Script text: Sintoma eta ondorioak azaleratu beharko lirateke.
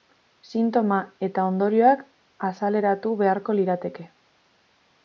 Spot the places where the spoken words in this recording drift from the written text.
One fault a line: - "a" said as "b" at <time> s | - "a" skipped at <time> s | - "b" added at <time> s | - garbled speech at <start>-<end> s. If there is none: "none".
none